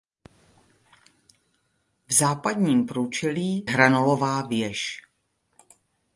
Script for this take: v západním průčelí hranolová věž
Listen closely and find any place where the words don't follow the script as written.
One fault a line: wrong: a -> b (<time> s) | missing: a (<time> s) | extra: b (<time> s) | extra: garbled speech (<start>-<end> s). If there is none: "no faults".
no faults